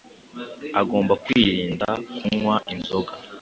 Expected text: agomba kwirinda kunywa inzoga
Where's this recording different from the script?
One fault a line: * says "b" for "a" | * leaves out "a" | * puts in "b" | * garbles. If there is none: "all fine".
all fine